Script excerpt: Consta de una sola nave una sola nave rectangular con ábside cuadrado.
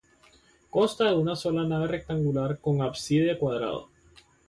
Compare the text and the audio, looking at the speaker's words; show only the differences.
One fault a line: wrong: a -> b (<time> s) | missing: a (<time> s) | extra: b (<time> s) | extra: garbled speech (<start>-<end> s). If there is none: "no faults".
missing: una sola nave (1.9 s)